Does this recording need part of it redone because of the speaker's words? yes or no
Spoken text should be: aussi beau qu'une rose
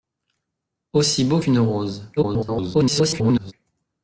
yes